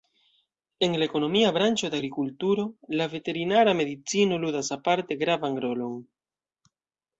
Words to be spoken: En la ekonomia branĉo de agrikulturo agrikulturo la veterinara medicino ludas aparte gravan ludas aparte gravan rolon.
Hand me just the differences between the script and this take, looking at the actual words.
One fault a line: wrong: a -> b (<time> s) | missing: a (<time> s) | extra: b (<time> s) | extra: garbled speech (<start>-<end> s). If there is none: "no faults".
missing: agrikulturo (2.7 s)
missing: ludas aparte gravan (5.6 s)